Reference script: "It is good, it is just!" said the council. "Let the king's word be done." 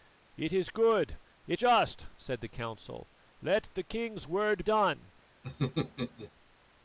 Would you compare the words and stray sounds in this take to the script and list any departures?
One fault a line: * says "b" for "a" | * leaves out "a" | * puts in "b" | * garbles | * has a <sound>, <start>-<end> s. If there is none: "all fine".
* leaves out "is"
* leaves out "be"
* has a laugh, 5.4-6.3 s